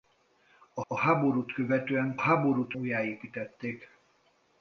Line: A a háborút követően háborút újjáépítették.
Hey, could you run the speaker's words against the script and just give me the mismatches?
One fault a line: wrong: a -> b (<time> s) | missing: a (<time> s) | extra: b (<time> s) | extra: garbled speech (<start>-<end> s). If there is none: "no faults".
no faults